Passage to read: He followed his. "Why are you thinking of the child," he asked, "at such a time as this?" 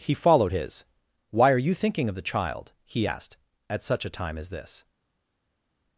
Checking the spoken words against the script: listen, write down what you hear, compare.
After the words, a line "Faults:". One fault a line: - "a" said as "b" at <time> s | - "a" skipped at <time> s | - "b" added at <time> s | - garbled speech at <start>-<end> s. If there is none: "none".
He followed his. "Why are you thinking of the child," he asked, "at such a time as this?"
Faults:
none